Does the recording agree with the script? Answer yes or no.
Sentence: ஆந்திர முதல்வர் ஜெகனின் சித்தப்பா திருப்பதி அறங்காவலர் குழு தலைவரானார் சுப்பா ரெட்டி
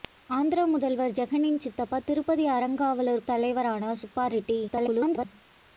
no